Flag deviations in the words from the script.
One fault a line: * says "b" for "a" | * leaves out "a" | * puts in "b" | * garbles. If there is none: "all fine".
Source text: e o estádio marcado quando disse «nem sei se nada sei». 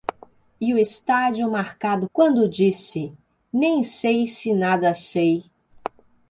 all fine